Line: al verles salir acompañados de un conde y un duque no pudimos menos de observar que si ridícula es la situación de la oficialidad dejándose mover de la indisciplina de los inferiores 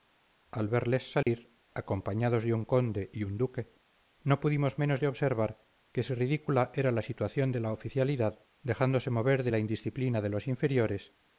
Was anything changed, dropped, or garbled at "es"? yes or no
yes